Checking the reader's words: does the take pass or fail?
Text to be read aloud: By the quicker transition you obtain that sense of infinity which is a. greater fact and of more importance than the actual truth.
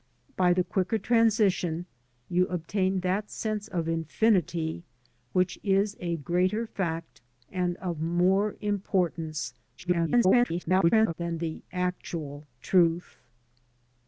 fail